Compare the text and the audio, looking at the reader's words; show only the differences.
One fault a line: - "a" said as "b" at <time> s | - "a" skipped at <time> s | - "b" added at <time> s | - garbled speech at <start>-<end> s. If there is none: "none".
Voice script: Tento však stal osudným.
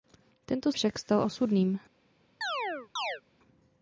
none